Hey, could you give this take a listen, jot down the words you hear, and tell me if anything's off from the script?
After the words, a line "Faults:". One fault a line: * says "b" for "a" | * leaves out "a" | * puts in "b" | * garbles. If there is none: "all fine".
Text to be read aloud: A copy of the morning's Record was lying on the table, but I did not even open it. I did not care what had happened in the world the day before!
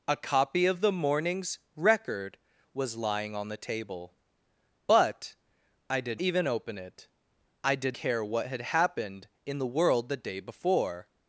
A copy of the morning's Record was lying on the table, but I did even open it. I did care what had happened in the world the day before!
Faults:
* leaves out "not"
* leaves out "not"